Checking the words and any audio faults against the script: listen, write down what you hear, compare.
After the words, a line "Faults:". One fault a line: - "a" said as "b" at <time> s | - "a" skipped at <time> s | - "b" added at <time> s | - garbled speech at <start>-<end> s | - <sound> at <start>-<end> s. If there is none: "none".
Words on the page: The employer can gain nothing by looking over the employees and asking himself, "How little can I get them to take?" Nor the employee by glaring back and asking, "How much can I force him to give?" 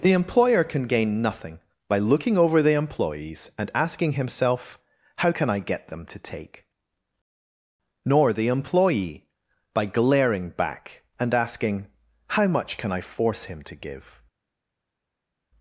The employer can gain nothing by looking over the employees and asking himself, "How can I get them to take?" Nor the employee by glaring back and asking, "How much can I force him to give?"
Faults:
- "little" skipped at 5.3 s